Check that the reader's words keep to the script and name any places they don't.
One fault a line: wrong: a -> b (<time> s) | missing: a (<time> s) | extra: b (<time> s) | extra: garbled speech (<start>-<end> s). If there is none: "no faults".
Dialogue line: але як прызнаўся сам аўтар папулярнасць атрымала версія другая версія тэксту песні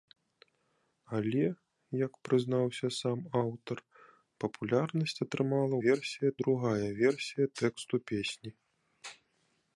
no faults